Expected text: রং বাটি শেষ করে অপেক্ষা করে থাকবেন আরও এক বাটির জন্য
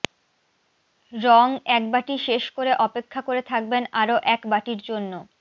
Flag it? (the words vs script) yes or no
yes